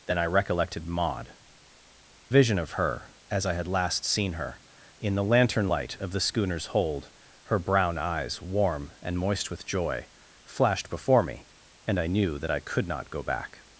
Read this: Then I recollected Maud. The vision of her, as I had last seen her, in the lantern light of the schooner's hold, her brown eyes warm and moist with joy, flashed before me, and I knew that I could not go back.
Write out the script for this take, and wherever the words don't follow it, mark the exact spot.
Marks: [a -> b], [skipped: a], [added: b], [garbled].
Then I recollected Maud. [skipped: The] vision of her, as I had last seen her, in the lantern light of the schooner's hold, her brown eyes warm and moist with joy, flashed before me, and I knew that I could not go back.